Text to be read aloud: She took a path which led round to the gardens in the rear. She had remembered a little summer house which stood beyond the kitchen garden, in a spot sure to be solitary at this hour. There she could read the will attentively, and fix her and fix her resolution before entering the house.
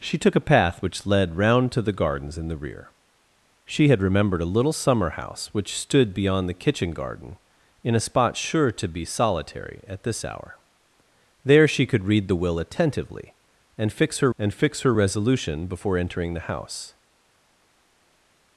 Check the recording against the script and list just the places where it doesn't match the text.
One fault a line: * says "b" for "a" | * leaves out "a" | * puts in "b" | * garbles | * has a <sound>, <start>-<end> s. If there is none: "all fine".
all fine